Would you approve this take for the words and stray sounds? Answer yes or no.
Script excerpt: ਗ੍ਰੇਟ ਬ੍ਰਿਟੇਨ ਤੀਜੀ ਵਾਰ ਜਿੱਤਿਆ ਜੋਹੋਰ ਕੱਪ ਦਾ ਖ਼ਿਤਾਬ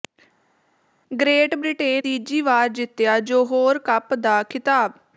yes